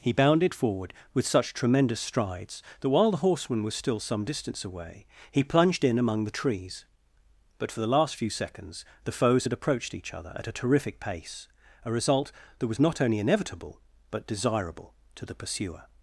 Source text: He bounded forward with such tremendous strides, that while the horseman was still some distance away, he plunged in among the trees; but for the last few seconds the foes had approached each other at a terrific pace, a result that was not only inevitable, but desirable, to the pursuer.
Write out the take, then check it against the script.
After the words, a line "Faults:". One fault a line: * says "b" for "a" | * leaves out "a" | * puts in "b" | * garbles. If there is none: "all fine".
He bounded forward with such tremendous strides, that while the horseman was still some distance away, he plunged in among the trees; but for the last few seconds the foes had approached each other at a terrific pace, a result that was not only inevitable, but desirable, to the pursuer.
Faults:
all fine